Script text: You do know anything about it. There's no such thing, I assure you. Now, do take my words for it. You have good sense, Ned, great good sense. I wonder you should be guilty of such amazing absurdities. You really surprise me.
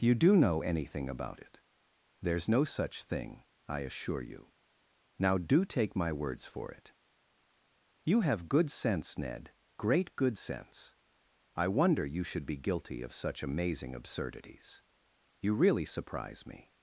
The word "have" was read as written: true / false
true